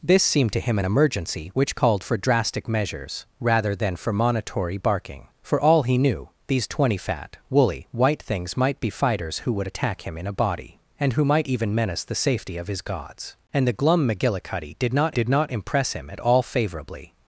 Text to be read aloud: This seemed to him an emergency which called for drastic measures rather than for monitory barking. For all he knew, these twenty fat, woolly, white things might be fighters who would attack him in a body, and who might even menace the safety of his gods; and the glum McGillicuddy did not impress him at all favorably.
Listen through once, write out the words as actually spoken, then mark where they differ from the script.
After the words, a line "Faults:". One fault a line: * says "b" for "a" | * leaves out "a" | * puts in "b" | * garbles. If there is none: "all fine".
This seemed to him an emergency which called for drastic measures rather than for monitory barking. For all he knew, these twenty fat, woolly, white things might be fighters who would attack him in a body, and who might even menace the safety of his gods; and the glum McGillicuddy did not did not impress him at all favorably.
Faults:
* puts in "did not"